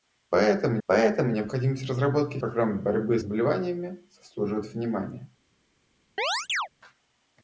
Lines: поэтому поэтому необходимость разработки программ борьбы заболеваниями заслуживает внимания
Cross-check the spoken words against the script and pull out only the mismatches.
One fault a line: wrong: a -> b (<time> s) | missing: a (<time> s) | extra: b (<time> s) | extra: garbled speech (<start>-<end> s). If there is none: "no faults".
no faults